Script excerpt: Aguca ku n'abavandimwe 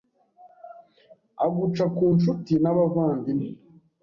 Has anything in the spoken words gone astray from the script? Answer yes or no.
yes